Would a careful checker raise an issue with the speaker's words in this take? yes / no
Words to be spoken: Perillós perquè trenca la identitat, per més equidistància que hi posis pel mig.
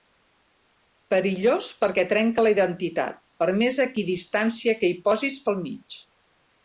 no